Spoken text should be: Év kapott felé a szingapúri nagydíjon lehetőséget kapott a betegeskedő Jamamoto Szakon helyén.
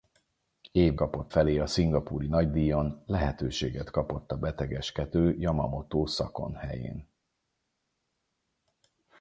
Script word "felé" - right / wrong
right